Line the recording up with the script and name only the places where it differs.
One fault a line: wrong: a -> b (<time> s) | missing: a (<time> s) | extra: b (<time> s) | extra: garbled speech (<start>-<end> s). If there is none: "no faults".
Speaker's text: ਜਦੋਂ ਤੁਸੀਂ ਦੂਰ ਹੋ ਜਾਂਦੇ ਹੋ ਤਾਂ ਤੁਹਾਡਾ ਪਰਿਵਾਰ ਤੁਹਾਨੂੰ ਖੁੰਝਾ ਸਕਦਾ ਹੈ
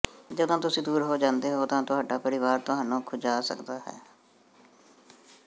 no faults